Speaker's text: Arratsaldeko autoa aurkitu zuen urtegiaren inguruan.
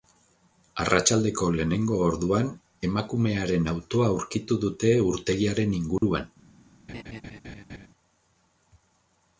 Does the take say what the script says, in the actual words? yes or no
no